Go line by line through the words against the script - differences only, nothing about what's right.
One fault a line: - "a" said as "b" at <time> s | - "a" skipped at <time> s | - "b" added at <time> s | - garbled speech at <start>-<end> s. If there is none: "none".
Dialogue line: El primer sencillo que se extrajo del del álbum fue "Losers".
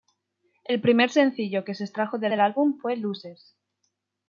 none